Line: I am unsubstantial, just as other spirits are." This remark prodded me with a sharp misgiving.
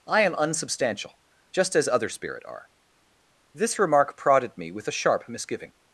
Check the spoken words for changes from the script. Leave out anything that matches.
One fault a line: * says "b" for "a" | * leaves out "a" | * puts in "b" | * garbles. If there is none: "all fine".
* says "spirit" for "spirits"